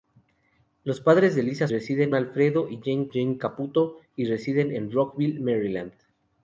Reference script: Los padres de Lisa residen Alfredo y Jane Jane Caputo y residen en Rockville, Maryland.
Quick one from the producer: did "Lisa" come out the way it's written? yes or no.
yes